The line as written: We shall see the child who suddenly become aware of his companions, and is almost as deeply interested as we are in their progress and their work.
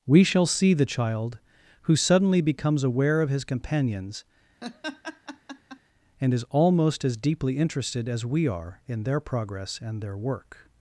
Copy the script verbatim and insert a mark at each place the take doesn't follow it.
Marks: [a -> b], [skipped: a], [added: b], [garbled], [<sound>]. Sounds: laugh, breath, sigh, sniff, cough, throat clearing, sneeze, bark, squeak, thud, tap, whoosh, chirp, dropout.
We shall see the child who suddenly [become -> becomes] aware of his companions, [laugh] and is almost as deeply interested as we are in their progress and their work.